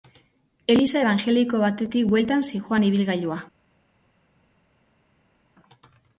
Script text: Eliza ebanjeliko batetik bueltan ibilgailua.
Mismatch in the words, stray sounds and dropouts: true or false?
true